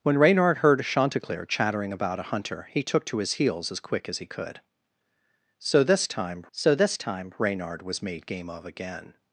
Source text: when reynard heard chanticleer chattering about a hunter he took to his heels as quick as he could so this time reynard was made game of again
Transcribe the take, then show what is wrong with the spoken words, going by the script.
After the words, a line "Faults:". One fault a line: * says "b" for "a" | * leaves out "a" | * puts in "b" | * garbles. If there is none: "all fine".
when reynard heard chanticleer chattering about a hunter he took to his heels as quick as he could so this time so this time reynard was made game of again
Faults:
* puts in "so this time"